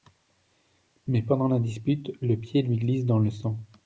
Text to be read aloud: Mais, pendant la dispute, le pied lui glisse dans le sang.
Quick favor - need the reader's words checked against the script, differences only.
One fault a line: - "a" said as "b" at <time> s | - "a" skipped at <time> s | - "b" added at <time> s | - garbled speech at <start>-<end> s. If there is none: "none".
none